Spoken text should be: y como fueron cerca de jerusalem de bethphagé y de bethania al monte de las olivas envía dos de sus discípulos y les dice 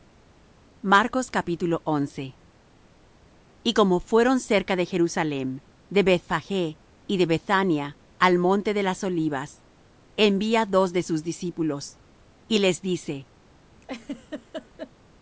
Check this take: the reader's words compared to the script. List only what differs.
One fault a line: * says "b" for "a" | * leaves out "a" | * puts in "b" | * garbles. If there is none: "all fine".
all fine